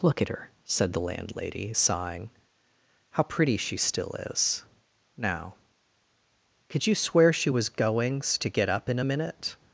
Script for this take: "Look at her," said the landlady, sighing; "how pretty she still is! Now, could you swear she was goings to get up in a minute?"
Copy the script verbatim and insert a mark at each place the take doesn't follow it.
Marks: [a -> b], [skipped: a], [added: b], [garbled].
"Look at her," said the landlady, sighing; "how pretty she still is! Now, could you swear she was goings to get up in a minute?"